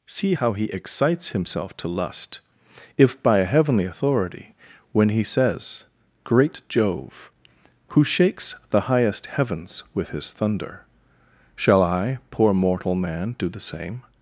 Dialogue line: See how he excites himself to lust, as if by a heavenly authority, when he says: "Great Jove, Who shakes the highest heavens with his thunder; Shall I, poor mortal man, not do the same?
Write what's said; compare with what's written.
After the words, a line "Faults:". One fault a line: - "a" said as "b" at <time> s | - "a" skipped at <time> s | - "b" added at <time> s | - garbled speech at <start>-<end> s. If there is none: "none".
See how he excites himself to lust, if by a heavenly authority, when he says: "Great Jove, Who shakes the highest heavens with his thunder; Shall I, poor mortal man, do the same?
Faults:
- "as" skipped at 2.4 s
- "not" skipped at 13.3 s